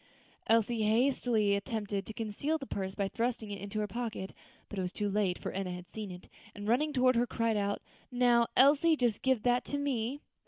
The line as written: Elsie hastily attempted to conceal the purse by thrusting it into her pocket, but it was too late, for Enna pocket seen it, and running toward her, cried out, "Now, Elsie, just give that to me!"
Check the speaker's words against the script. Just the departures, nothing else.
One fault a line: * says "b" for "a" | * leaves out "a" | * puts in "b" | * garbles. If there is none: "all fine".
* says "had" for "pocket"